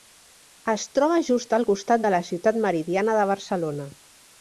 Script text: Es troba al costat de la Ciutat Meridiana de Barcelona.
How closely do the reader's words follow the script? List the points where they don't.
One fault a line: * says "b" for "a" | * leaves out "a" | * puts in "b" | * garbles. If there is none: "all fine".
* puts in "just"